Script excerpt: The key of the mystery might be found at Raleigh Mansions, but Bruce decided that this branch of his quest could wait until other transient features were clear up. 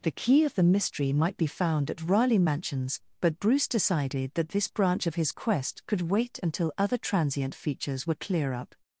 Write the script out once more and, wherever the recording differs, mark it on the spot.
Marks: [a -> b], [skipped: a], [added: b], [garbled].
The key of the mystery might be found at Raleigh Mansions, but Bruce decided that this branch of his quest could wait until other transient features were clear up.